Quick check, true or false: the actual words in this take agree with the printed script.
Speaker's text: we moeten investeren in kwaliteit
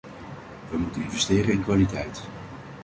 true